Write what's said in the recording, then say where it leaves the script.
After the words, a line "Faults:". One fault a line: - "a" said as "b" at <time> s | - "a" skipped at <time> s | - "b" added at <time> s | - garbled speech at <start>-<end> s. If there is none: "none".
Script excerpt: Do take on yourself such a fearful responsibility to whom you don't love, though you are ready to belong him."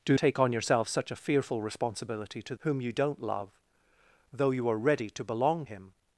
Do take on yourself such a fearful responsibility to whom you don't love, though you are ready to belong him."
Faults:
none